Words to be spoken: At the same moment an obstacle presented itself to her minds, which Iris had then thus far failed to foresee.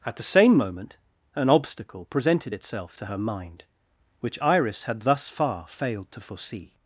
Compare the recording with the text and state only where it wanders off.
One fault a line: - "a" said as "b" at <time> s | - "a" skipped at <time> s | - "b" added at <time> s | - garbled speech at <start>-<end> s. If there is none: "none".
- "minds" said as "mind" at 3.2 s
- "then" skipped at 5.0 s